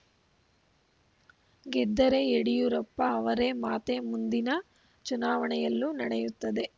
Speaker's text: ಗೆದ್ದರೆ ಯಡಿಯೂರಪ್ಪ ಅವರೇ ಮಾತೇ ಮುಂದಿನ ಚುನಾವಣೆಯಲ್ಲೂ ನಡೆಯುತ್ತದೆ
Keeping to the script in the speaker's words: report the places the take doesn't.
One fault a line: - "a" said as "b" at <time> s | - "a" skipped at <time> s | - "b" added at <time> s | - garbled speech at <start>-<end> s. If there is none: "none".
none